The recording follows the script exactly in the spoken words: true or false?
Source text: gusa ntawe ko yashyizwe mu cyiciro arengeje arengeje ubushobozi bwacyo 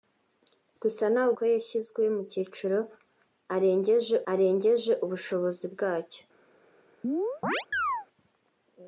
true